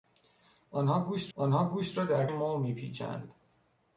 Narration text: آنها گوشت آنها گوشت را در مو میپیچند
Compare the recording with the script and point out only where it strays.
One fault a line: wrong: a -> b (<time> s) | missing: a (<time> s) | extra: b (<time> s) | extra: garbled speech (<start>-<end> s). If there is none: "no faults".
no faults